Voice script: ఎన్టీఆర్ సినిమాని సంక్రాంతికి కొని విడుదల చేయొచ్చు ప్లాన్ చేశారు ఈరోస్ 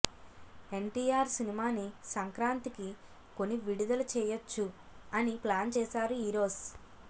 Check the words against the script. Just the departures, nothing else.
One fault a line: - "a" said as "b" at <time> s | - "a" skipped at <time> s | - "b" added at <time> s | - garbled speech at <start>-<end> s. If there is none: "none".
- "అని" added at 5.1 s